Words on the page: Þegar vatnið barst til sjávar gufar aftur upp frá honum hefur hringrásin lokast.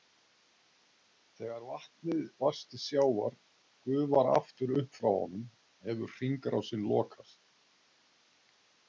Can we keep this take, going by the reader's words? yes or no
yes